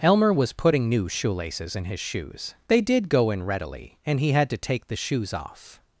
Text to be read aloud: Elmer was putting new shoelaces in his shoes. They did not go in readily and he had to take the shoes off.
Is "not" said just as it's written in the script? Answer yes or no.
no